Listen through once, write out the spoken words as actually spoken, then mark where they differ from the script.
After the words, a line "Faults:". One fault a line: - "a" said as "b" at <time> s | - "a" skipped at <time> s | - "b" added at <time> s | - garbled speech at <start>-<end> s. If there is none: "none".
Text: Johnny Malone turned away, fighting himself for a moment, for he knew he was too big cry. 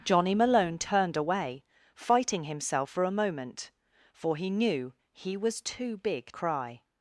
Johnny Malone turned away, fighting himself for a moment, for he knew he was too big cry.
Faults:
none